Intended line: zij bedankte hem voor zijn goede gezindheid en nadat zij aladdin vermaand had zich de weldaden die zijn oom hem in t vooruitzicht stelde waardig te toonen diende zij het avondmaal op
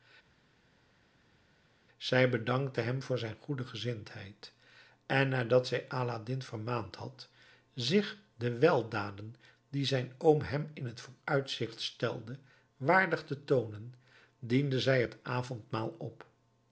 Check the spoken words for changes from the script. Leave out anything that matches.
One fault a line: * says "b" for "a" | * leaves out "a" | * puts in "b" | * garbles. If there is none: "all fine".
all fine